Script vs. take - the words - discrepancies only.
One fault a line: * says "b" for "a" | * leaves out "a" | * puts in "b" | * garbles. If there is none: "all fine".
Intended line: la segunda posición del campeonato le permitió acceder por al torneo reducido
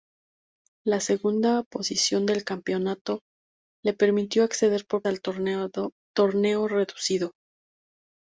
all fine